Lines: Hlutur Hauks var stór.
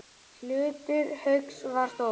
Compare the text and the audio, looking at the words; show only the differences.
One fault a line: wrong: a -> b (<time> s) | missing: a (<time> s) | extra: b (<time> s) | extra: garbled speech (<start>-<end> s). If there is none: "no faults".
no faults